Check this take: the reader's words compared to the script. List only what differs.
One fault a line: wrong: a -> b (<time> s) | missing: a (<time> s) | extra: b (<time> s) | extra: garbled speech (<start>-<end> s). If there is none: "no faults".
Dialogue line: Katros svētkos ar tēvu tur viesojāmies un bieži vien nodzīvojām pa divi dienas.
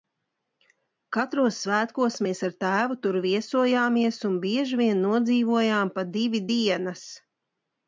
extra: mēs (2.3 s)